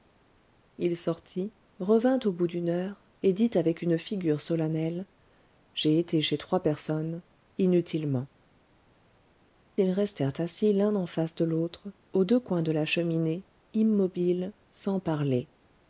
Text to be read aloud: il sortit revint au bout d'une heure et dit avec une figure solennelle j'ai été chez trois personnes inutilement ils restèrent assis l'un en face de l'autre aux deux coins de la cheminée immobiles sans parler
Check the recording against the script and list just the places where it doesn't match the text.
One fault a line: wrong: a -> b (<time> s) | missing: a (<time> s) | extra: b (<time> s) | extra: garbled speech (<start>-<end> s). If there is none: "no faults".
no faults